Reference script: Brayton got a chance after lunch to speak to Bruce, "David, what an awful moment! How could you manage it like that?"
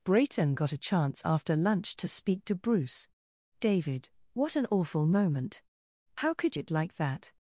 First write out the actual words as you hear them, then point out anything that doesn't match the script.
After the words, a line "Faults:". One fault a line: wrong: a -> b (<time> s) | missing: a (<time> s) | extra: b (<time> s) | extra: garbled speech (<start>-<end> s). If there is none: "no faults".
Brayton got a chance after lunch to speak to Bruce, "David, what an awful moment! How could it like that?"
Faults:
missing: you manage (6.6 s)